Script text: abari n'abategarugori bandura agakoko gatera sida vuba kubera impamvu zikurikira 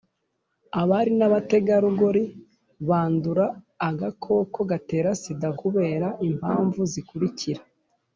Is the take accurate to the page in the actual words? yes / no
no